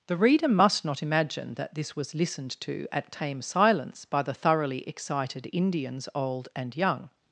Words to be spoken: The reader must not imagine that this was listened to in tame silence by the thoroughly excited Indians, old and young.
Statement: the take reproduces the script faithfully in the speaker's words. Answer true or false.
false